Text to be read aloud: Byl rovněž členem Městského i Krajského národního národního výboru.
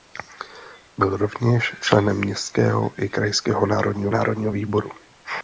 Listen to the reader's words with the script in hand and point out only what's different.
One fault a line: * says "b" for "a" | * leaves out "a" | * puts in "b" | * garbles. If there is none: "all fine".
all fine